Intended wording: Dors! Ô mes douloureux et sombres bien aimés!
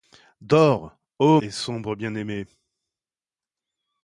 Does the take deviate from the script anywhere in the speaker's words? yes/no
yes